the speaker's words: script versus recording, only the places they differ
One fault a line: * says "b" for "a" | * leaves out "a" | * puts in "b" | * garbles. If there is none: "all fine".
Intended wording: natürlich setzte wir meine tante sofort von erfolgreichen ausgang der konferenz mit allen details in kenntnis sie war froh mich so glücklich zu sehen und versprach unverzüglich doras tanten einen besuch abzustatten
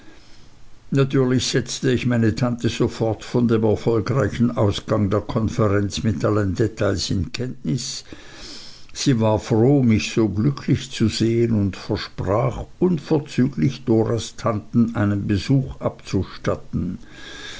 * says "ich" for "wir"
* puts in "dem"